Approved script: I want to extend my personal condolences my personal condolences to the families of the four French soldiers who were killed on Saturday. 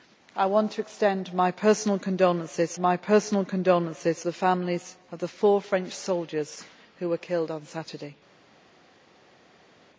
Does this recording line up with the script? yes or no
yes